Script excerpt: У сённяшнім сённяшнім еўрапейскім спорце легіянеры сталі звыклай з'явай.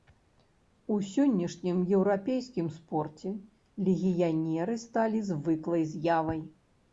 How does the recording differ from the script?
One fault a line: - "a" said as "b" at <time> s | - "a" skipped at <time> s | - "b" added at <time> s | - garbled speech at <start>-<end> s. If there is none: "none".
- "сённяшнім" skipped at 1.8 s